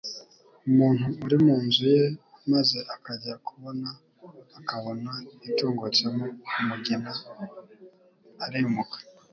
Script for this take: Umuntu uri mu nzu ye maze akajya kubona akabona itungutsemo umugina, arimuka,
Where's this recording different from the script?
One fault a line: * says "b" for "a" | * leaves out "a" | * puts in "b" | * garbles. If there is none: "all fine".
all fine